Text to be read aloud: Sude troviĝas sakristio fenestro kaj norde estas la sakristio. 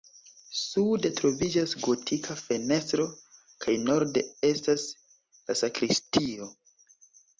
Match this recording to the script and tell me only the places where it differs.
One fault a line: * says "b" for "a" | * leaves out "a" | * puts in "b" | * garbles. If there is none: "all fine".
* says "gotika" for "sakristio"